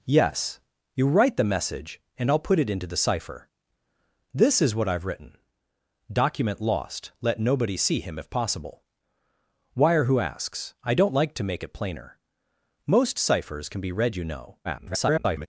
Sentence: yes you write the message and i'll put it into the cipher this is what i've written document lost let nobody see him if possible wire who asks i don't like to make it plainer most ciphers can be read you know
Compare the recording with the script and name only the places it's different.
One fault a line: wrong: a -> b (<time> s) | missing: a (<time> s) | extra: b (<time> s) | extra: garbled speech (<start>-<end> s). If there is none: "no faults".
extra: garbled speech (14.6-15.5 s)